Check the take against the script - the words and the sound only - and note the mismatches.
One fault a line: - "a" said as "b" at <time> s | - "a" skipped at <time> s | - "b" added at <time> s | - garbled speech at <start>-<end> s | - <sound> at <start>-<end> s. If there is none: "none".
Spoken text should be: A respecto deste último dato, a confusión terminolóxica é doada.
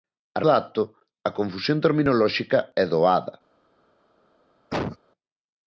- "respecto deste último" skipped at 0.4 s
- cough at 4.7-5.0 s